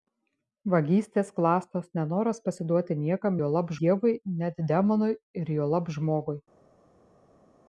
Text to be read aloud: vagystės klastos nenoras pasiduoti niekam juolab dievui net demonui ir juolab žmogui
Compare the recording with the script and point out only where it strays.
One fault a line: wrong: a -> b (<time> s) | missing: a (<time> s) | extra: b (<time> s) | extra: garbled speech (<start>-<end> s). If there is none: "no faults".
no faults